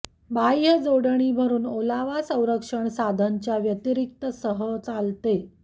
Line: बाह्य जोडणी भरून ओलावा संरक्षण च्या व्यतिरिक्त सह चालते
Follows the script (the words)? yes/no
no